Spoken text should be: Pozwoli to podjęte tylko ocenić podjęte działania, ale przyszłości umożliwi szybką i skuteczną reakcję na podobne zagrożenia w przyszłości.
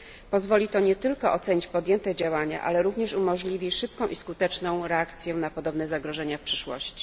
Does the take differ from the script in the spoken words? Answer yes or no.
yes